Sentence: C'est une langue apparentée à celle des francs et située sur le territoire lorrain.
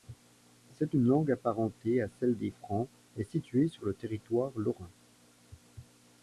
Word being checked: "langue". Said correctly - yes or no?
yes